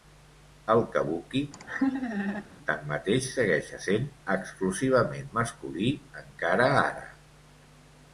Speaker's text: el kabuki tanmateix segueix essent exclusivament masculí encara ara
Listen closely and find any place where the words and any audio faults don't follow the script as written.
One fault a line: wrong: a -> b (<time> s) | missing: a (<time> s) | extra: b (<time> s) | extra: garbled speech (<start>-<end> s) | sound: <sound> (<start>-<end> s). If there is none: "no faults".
sound: laugh (1.5-2.4 s)